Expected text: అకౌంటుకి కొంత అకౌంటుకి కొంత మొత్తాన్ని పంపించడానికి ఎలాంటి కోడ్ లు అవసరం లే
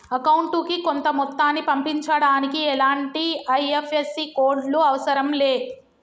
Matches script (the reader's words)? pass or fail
fail